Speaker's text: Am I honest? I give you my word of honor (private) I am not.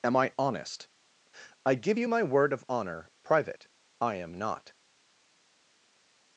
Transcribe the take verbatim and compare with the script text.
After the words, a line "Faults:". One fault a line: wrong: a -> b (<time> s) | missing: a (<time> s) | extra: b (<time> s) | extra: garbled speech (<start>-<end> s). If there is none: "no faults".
Am I honest? I give you my word of honor (private) I am not.
Faults:
no faults